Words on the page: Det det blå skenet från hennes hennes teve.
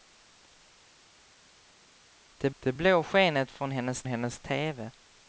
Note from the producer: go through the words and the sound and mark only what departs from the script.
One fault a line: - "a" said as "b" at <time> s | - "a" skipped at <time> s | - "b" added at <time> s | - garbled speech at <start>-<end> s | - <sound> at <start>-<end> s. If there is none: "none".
none